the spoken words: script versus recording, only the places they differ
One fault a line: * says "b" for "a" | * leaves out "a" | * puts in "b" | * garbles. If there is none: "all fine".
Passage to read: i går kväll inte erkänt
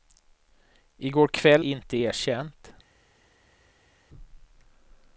all fine